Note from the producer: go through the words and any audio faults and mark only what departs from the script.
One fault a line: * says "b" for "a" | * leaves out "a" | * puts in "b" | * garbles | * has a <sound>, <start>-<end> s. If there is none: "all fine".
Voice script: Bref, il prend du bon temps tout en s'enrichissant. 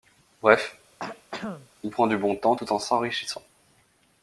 * has a throat clearing, 1.0-1.7 s